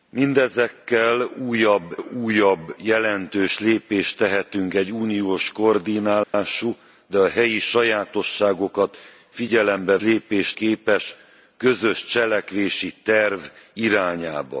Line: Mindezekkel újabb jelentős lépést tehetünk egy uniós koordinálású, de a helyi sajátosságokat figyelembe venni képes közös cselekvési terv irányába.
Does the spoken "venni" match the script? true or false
false